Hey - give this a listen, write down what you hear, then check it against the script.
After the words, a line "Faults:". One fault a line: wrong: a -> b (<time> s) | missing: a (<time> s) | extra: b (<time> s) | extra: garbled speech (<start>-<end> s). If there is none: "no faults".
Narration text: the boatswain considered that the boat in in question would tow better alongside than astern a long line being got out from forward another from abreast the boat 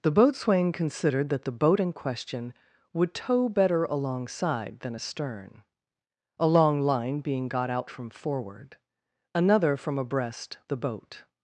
the boatswain considered that the boat in question would tow better alongside than astern a long line being got out from forward another from abreast the boat
Faults:
missing: in (1.9 s)